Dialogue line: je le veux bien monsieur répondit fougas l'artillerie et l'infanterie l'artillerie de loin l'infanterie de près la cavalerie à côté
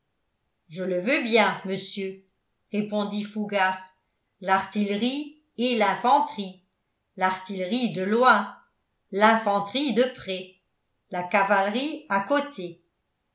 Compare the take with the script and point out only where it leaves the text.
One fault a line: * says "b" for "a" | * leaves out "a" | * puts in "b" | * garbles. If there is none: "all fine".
all fine